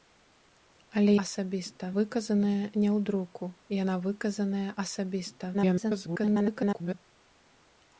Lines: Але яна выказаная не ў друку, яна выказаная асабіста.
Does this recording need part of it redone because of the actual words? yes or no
yes